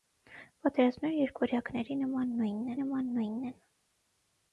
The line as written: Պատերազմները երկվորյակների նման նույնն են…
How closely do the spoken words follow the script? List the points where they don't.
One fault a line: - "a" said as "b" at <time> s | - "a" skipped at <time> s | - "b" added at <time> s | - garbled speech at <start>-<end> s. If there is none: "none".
- "նման նույնն" added at 2.8 s